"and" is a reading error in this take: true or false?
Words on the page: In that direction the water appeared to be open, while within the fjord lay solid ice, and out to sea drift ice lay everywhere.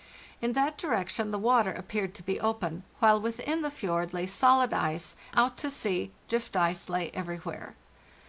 true